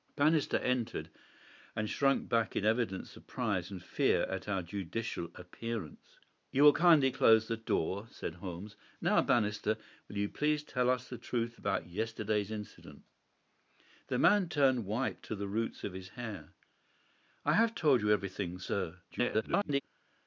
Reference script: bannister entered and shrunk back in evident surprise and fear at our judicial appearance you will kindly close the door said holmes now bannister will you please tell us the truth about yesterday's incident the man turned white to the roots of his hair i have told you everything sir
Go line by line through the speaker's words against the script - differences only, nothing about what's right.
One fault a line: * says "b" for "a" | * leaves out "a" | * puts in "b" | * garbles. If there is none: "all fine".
* garbles